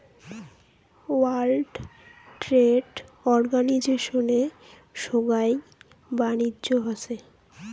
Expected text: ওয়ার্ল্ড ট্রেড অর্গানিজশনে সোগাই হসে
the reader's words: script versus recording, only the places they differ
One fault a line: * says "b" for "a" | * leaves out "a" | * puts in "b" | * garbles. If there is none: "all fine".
* puts in "বাণিজ্য"